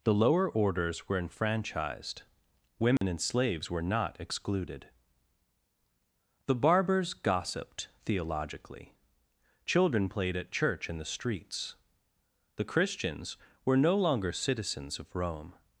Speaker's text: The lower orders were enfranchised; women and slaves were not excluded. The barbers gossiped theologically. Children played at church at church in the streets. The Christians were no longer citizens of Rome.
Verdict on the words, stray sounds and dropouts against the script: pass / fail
fail